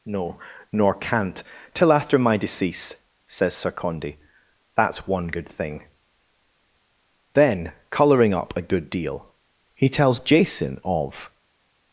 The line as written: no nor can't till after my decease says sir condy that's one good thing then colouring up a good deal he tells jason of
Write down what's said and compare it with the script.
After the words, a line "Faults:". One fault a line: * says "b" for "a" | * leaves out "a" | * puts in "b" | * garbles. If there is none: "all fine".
no nor can't till after my decease says sir condy that's one good thing then colouring up a good deal he tells jason of
Faults:
all fine